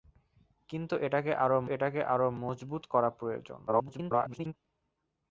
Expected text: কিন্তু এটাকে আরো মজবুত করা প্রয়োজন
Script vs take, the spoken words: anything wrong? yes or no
yes